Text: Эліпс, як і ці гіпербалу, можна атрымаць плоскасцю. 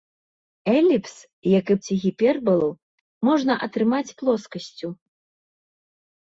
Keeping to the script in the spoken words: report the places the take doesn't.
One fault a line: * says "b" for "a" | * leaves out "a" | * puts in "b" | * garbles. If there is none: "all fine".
all fine